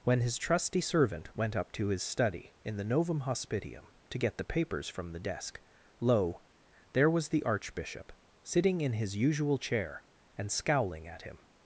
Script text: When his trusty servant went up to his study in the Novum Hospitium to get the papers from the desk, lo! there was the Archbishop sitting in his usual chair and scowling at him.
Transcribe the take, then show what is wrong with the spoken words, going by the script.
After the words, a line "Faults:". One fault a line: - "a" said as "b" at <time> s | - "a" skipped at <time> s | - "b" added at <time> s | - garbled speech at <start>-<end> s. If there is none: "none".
When his trusty servant went up to his study in the Novum Hospitium to get the papers from the desk, lo! there was the Archbishop sitting in his usual chair and scowling at him.
Faults:
none